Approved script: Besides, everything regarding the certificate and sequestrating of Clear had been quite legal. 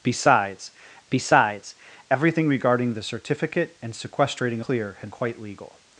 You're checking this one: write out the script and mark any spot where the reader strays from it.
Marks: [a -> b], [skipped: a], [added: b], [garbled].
Besides, [added: besides] everything regarding the certificate and sequestrating [skipped: of] Clear had [skipped: been] quite legal.